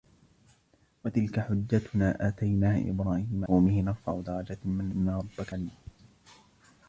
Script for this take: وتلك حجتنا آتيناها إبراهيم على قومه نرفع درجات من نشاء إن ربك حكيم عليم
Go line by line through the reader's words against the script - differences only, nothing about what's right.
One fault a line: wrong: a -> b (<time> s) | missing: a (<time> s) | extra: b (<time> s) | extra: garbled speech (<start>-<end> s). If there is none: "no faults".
missing: على (3.5 s)
missing: نشاء (4.9 s)
missing: حكيم (5.5 s)